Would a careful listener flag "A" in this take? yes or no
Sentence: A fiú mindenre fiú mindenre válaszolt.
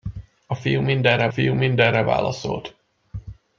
no